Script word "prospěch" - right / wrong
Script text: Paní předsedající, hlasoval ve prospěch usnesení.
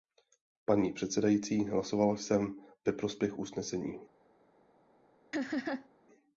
right